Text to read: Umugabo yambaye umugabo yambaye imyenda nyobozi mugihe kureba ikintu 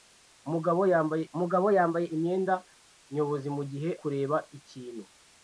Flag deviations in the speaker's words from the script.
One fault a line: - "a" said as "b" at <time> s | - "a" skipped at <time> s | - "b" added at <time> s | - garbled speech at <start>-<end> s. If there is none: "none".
none